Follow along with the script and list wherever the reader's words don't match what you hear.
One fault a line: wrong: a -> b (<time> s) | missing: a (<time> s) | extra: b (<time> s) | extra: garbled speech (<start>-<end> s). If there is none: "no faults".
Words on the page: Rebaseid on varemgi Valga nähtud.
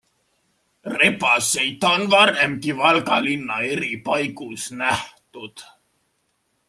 extra: linna eri paigus (3.2 s)